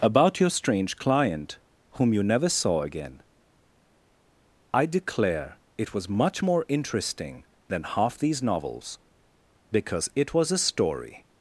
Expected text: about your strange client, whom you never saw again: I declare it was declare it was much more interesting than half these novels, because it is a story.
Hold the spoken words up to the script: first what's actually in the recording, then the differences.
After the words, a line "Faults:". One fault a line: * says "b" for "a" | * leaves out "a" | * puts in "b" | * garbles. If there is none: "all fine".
about your strange client, whom you never saw again: I declare it was much more interesting than half these novels, because it was a story.
Faults:
* leaves out "declare it was"
* says "was" for "is"